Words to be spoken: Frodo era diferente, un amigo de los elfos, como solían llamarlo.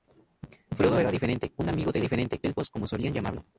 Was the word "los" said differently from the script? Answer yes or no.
yes